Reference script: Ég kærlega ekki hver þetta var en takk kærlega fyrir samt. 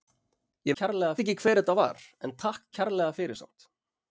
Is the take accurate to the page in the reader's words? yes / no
yes